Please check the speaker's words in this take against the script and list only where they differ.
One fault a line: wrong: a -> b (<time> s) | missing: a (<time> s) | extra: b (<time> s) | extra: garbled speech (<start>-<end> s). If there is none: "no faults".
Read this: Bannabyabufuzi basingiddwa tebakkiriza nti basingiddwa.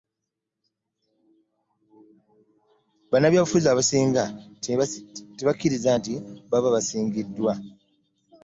wrong: basingiddwa -> abasinga (3.7 s)
extra: baba (6.5 s)